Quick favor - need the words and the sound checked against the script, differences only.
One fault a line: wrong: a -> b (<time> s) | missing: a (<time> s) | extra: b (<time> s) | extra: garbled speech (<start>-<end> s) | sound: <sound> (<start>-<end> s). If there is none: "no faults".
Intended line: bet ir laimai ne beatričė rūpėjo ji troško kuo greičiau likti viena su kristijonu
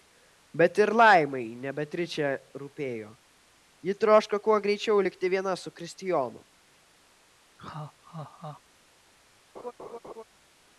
sound: laugh (7.6-8.6 s)
sound: laugh (9.5-10.2 s)